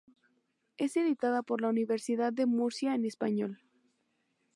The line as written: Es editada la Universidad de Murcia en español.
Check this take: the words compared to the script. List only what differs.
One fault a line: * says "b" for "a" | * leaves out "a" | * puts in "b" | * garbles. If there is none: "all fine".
* puts in "por"